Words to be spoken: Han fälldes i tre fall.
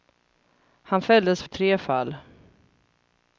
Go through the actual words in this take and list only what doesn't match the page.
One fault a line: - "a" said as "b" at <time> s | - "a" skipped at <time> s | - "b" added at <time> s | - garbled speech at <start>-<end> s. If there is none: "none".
none